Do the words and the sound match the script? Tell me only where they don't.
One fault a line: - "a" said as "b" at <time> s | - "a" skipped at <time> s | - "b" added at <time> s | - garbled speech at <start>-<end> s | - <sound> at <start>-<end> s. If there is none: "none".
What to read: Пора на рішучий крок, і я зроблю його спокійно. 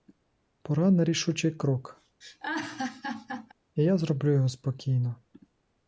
- laugh at 2.2-3.5 s